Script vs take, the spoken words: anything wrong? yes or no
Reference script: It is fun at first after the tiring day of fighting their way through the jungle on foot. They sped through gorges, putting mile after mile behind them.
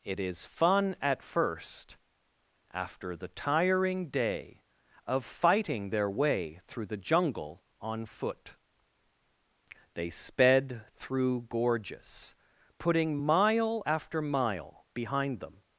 no